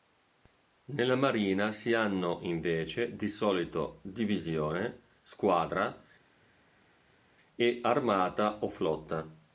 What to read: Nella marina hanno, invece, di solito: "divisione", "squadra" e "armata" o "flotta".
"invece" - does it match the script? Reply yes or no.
yes